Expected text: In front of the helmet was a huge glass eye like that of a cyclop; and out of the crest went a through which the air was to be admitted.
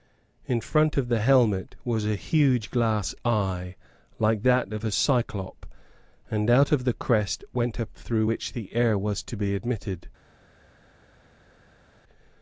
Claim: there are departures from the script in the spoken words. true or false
false